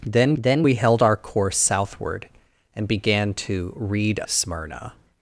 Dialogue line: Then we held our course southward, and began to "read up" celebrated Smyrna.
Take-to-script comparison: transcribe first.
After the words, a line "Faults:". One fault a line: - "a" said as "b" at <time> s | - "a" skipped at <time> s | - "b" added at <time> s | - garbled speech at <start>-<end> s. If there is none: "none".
Then then we held our course southward, and began to "read Smyrna.
Faults:
- "then" added at 0.4 s
- "up celebrated" skipped at 4.2 s